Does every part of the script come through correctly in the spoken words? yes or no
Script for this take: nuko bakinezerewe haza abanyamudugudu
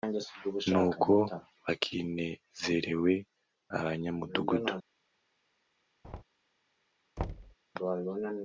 no